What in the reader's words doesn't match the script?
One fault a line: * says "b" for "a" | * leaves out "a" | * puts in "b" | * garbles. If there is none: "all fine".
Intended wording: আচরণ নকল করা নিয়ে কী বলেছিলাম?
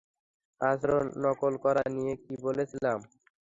all fine